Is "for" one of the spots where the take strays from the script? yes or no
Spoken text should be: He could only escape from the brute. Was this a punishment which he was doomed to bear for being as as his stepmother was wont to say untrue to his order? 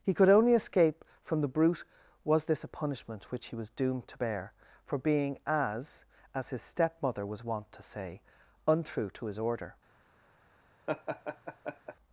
no